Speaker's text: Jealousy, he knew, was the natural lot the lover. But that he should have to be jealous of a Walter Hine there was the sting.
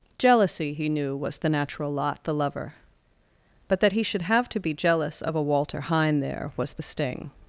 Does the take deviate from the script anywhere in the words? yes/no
no